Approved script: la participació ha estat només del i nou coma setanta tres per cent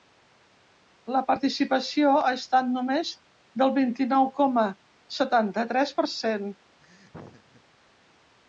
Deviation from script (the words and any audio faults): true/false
true